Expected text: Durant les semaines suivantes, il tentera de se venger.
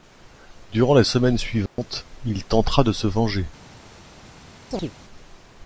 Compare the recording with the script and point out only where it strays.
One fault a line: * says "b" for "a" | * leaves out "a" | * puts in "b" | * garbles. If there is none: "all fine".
all fine